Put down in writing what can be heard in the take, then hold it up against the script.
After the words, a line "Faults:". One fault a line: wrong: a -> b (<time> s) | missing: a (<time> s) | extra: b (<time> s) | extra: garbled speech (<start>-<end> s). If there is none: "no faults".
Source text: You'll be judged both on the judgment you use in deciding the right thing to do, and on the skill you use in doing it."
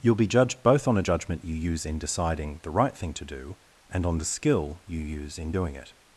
You'll be judged both on a judgment you use in deciding the right thing to do, and on the skill you use in doing it."
Faults:
wrong: the -> a (1.0 s)